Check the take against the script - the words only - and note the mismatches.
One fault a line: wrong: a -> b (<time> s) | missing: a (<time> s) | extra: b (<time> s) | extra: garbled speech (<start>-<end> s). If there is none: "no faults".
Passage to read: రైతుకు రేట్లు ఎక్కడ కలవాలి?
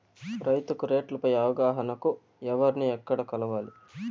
extra: పై అవగాహనకు ఎవర్ని (1.2 s)